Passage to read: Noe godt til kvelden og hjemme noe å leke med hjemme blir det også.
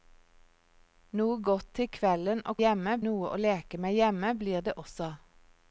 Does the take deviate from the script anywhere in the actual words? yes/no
no